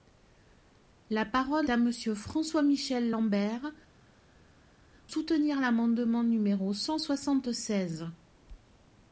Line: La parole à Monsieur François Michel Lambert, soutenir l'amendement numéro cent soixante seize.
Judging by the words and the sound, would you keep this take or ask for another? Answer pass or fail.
pass